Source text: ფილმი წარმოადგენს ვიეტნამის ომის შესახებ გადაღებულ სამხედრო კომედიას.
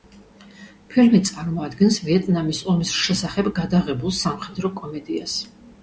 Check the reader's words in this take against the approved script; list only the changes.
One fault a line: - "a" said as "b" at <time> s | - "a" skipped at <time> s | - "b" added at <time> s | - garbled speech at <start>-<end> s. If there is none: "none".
none